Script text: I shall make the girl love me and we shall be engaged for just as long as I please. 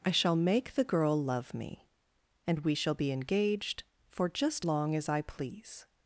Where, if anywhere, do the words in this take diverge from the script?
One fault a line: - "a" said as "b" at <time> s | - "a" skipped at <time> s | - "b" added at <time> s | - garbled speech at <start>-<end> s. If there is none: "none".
- "as" skipped at 4.7 s